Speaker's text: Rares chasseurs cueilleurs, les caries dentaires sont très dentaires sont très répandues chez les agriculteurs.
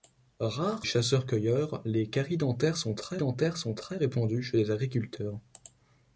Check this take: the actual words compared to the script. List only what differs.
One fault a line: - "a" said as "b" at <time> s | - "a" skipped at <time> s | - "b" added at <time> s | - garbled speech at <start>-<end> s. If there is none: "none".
none